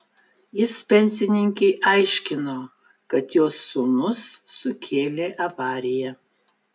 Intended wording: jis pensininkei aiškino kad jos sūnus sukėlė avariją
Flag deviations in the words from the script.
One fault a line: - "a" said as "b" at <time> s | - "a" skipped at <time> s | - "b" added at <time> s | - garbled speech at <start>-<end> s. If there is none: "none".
none